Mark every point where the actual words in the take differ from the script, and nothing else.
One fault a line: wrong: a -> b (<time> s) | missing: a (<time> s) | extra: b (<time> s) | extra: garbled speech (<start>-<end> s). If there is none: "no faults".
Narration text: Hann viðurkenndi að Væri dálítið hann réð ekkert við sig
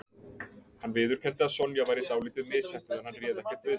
extra: Sonja (1.6 s)
extra: misheppnuð en (2.5 s)